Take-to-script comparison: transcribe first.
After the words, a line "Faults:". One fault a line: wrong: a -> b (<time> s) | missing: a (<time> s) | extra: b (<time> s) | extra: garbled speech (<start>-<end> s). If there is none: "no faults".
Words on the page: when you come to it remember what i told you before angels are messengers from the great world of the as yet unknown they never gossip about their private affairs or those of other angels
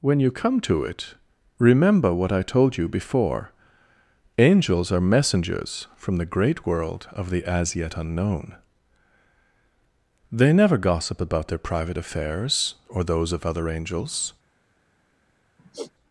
when you come to it remember what i told you before angels are messengers from the great world of the as yet unknown they never gossip about their private affairs or those of other angels
Faults:
no faults